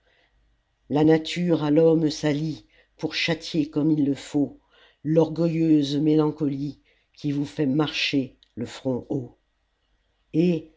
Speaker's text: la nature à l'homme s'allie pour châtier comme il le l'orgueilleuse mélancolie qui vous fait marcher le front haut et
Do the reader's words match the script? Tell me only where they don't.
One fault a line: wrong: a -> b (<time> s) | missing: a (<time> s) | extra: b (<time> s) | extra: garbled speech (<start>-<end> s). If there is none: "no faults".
extra: faut (4.1 s)